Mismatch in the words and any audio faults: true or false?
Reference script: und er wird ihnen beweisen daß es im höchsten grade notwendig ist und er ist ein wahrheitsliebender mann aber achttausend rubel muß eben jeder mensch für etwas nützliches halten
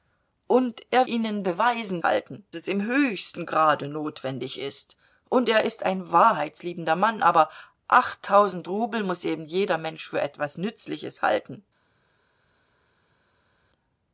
true